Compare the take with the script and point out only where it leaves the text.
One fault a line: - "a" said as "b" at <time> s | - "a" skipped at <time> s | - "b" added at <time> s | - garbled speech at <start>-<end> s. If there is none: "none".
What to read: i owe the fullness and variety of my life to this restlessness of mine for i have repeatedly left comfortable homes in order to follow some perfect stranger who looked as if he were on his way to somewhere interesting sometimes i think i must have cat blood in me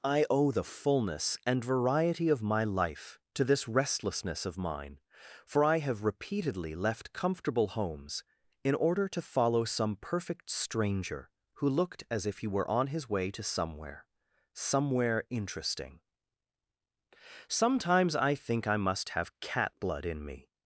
- "somewhere" added at 14.5 s